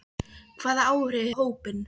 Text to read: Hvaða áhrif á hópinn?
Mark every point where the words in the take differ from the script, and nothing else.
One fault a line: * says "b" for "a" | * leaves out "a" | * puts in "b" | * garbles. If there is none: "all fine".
all fine